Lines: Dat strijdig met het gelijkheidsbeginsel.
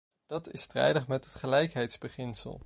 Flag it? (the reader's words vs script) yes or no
yes